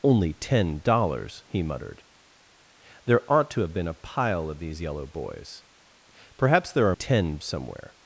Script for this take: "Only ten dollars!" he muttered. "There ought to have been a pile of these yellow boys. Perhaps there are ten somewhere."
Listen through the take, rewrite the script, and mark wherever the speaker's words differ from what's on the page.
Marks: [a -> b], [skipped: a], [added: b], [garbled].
"Only ten dollars!" he muttered. "There ought to have been a pile of these yellow boys. Perhaps there are ten somewhere."